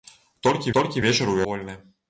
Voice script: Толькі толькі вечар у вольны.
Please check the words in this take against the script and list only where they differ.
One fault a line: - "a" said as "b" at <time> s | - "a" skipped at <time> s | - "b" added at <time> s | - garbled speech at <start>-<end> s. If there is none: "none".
none